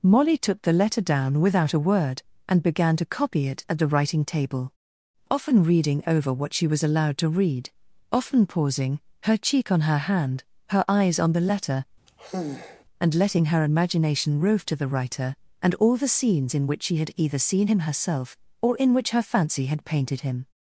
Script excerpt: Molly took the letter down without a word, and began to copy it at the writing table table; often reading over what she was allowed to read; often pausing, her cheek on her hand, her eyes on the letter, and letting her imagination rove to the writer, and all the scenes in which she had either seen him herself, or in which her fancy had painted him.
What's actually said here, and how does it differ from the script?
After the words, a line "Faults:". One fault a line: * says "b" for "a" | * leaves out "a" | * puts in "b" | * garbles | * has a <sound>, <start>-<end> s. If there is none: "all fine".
Molly took the letter down without a word, and began to copy it at the writing table; often reading over what she was allowed to read; often pausing, her cheek on her hand, her eyes on the letter, and letting her imagination rove to the writer, and all the scenes in which she had either seen him herself, or in which her fancy had painted him.
Faults:
* leaves out "table"
* has a sigh, 12.1-12.8 s